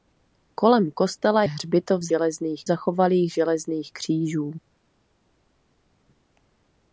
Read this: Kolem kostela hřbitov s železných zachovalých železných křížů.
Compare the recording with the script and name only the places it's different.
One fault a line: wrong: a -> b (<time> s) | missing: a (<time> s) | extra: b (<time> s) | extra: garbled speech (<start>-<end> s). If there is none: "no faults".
no faults